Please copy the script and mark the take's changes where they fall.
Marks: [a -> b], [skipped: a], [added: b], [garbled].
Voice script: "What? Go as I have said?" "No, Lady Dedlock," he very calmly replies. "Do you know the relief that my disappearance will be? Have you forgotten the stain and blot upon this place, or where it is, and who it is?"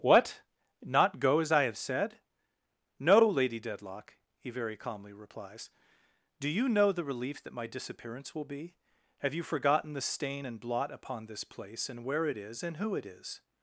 "What? [added: Not] Go as I have said?" "No, Lady Dedlock," he very calmly replies. "Do you know the relief that my disappearance will be? Have you forgotten the stain and blot upon this place, [or -> and] where it is, and who it is?"